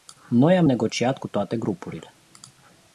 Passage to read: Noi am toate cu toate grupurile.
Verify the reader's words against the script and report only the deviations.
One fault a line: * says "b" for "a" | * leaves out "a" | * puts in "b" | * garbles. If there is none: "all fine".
* says "negociat" for "toate"